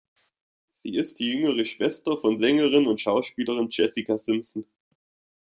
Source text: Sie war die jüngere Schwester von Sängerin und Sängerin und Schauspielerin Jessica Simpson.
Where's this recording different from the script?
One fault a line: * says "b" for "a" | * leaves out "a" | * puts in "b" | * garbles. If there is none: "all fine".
* says "ist" for "war"
* leaves out "Sängerin und"